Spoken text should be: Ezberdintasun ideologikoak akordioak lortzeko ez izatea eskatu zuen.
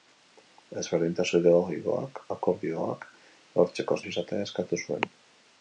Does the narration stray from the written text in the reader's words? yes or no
no